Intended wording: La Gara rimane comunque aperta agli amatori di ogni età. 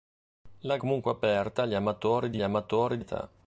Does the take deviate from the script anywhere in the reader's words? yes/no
yes